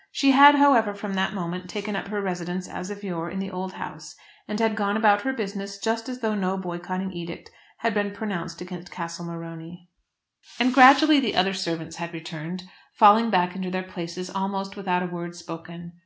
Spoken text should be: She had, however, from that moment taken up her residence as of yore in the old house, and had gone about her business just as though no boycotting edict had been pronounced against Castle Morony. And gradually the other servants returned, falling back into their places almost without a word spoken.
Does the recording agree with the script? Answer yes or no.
no